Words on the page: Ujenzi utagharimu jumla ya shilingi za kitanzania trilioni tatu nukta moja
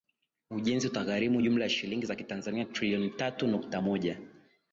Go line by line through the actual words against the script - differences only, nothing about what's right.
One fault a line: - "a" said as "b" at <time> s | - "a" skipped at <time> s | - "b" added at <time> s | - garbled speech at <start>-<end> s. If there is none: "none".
none